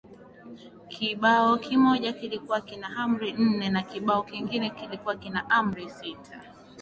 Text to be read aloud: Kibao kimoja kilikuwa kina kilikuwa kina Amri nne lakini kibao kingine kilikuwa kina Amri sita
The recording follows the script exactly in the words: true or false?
false